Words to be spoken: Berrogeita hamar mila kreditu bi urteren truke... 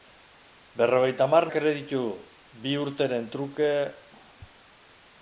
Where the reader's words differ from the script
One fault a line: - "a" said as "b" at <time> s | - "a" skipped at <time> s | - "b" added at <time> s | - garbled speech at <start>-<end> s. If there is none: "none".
- "mila" skipped at 1.4 s